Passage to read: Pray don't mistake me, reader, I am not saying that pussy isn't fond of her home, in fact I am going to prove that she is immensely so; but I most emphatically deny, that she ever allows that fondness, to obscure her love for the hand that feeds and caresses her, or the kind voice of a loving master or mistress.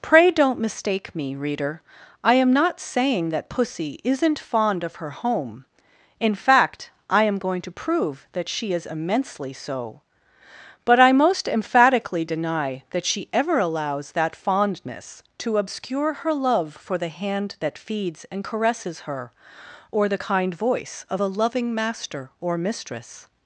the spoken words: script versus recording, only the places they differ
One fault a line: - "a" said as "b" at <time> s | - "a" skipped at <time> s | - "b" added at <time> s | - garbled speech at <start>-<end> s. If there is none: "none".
none